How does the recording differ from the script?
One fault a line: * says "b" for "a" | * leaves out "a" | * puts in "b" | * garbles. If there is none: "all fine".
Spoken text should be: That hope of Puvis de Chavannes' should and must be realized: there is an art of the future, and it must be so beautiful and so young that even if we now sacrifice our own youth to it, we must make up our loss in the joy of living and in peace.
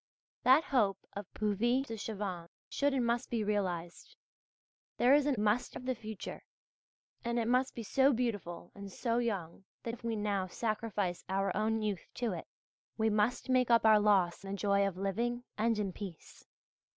* says "must" for "art"
* leaves out "even"
* leaves out "in"